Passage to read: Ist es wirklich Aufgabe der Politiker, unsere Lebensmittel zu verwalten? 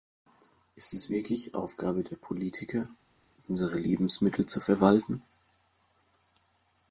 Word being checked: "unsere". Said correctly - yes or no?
yes